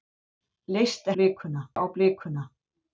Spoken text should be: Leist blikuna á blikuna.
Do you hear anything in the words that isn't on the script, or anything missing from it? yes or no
no